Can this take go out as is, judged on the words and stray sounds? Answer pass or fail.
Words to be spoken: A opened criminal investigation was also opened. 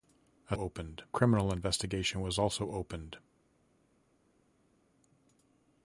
pass